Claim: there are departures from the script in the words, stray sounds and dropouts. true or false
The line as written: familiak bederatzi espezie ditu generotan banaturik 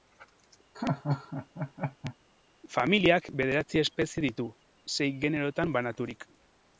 true